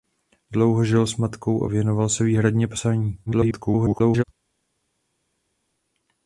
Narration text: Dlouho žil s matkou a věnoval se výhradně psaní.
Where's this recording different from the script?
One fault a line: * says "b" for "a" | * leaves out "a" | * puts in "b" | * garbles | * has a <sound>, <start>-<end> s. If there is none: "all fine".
* garbles